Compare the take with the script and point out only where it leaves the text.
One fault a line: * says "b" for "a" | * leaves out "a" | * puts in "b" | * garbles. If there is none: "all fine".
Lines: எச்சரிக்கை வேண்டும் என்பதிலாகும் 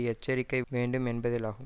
all fine